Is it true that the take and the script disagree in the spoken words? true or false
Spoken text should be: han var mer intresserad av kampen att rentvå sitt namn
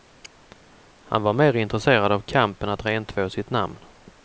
false